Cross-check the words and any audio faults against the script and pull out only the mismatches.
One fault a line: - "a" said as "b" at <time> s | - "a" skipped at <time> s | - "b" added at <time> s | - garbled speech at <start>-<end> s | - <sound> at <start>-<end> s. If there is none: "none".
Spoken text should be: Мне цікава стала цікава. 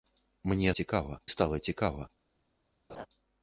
- laugh at 2.9-3.1 s